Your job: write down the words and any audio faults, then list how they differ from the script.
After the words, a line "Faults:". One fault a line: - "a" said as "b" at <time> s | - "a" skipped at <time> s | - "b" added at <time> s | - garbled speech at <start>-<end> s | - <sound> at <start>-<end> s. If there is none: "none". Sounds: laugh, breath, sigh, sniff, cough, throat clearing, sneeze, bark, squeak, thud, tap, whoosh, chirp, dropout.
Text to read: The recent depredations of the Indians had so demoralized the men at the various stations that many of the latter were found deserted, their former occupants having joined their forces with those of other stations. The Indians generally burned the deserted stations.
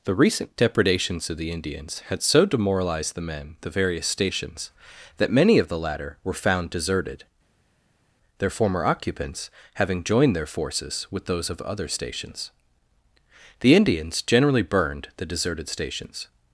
The recent depredations of the Indians had so demoralized the men the various stations that many of the latter were found deserted, their former occupants having joined their forces with those of other stations. The Indians generally burned the deserted stations.
Faults:
- "at" skipped at 3.5 s